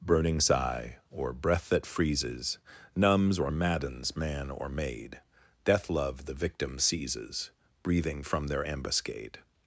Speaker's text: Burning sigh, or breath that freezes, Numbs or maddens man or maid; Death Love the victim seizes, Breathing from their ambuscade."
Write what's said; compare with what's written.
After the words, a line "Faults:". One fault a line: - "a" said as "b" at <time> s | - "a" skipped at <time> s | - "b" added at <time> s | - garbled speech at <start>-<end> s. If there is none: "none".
Burning sigh, or breath that freezes, Numbs or maddens man or maid; Death Love the victim seizes, Breathing from their ambuscade."
Faults:
none